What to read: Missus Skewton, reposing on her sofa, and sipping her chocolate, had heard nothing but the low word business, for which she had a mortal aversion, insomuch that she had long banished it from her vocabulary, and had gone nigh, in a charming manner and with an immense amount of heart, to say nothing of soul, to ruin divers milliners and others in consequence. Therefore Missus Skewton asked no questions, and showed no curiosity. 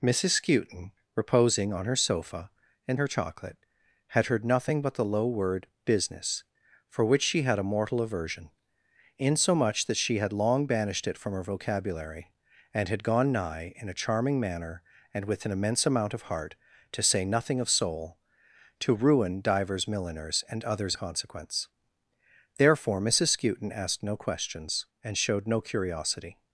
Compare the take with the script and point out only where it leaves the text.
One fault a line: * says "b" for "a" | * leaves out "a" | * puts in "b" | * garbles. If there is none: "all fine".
* leaves out "sipping"
* leaves out "in"